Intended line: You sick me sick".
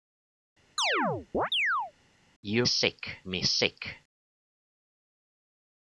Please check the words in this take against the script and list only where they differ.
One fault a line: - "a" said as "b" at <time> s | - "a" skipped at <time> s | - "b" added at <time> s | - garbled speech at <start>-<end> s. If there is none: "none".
none